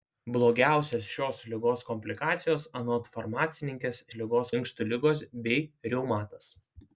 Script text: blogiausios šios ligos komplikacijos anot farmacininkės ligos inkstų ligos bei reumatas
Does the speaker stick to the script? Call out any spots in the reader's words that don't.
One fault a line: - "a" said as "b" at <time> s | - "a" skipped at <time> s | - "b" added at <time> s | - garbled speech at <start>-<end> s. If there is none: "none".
none